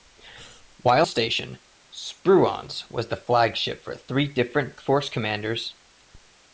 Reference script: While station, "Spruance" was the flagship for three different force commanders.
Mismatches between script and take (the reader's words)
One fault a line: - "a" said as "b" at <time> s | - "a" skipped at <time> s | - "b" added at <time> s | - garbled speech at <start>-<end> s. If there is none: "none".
none